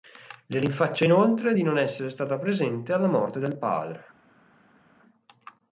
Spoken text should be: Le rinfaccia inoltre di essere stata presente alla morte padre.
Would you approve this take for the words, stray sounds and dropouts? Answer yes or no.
no